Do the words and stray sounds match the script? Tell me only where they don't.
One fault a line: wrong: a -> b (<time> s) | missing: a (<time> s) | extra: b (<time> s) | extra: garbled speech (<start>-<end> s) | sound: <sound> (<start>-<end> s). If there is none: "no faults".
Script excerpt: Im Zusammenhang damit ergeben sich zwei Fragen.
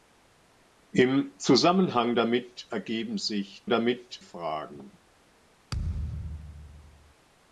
wrong: zwei -> damit (3.7 s)
sound: thud (5.7-7.1 s)